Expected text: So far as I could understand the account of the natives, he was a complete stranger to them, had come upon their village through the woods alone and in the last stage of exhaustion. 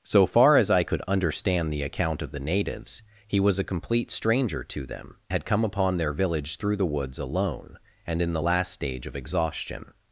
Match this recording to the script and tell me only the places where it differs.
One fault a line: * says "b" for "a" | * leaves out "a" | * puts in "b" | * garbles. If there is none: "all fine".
all fine